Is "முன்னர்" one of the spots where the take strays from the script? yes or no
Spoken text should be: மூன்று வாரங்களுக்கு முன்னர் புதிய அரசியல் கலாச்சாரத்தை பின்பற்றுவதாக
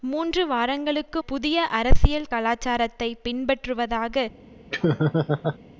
yes